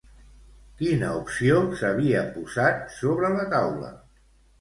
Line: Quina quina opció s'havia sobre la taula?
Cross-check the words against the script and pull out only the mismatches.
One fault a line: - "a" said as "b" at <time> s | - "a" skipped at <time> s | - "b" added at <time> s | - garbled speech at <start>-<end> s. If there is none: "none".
- "quina" skipped at 1.1 s
- "posat" added at 2.4 s